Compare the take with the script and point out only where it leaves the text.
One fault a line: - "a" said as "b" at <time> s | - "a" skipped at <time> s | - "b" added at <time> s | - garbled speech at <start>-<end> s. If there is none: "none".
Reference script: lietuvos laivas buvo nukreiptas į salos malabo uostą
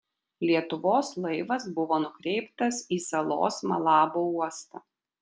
none